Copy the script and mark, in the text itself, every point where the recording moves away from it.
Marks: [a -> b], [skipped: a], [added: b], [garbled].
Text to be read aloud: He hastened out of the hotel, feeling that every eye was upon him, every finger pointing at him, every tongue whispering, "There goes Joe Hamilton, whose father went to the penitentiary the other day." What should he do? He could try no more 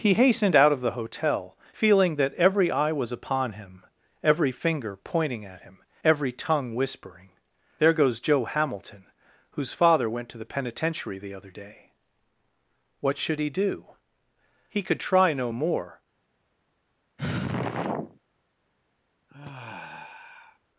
He hastened out of the hotel, feeling that every eye was upon him, every finger pointing at him, every tongue whispering, "There goes Joe Hamilton, whose father went to the penitentiary the other day." What should he do? He could try no more